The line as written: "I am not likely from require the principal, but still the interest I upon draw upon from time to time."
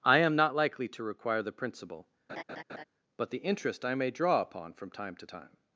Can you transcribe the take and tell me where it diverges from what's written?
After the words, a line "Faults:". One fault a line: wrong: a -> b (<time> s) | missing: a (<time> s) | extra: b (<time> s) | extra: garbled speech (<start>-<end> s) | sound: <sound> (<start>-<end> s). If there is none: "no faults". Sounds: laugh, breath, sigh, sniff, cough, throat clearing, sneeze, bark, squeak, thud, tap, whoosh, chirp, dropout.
"I am not likely to require the principal, but the interest I may draw upon from time to time."
Faults:
wrong: from -> to (0.9 s)
sound: laugh (2.3-2.8 s)
missing: still (3.3 s)
wrong: upon -> may (3.9 s)